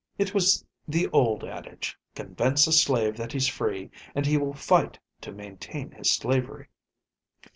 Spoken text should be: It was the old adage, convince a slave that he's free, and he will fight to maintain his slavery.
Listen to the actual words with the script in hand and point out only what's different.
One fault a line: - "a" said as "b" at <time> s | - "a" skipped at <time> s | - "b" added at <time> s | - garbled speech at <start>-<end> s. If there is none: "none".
none